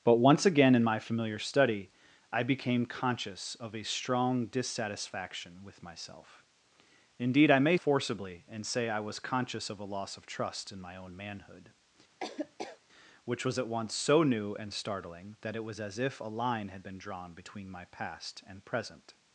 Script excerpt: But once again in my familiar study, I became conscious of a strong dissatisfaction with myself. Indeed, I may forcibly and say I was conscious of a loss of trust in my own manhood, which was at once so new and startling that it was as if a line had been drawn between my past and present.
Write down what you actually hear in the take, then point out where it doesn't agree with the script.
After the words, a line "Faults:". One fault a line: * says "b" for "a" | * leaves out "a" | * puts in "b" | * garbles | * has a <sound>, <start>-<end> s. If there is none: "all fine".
But once again in my familiar study, I became conscious of a strong dissatisfaction with myself. Indeed, I may forcibly and say I was conscious of a loss of trust in my own manhood, which was at once so new and startling that it was as if a line had been drawn between my past and present.
Faults:
* has a laugh, 12.2-12.8 s